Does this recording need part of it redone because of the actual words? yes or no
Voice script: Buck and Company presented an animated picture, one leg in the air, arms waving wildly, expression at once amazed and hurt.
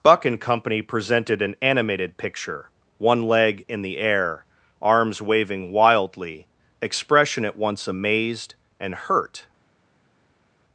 no